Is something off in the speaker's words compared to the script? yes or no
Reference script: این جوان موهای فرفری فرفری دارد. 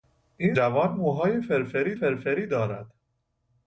no